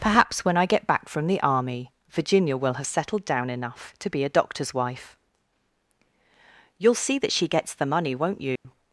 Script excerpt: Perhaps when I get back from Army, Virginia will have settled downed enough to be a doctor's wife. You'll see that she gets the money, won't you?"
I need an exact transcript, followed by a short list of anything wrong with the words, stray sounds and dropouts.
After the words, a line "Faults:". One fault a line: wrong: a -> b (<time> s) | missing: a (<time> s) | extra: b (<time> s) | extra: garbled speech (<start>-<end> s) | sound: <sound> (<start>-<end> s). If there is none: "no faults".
Perhaps when I get back from the Army, Virginia will have settled down enough to be a doctor's wife. You'll see that she gets the money, won't you?"
Faults:
extra: the (1.3 s)
wrong: downed -> down (3.2 s)
sound: dropout (8.6-8.6 s)